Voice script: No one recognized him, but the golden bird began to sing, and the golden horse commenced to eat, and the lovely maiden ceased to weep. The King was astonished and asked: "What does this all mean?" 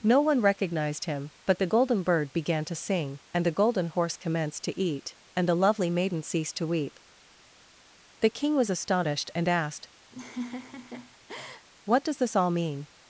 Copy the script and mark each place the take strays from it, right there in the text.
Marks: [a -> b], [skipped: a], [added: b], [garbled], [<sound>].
No one recognized him, but the golden bird began to sing, and the golden horse commenced to eat, and the lovely maiden ceased to weep. The King was astonished and asked: [laugh] "What does this all mean?"